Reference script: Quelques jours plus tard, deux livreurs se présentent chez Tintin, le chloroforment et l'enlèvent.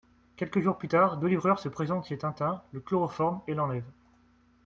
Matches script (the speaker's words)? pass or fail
pass